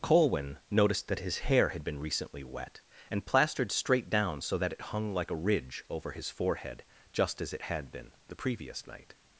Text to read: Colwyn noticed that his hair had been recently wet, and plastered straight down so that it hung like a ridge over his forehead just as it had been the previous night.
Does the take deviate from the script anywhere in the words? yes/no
no